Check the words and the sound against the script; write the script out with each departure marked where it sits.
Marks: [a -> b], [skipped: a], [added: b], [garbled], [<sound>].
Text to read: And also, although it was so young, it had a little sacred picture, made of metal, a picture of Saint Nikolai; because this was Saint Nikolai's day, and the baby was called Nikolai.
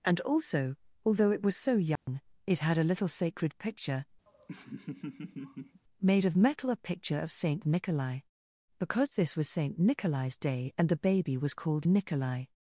And also, although it was so young, [dropout] it had a little sacred picture, [laugh] made of metal, a picture of Saint Nikolai; because this was Saint Nikolai's day, and the baby was called Nikolai.